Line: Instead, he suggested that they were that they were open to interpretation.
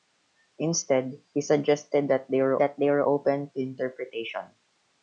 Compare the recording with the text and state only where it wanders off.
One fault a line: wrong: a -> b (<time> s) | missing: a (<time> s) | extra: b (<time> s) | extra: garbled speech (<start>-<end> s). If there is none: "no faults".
no faults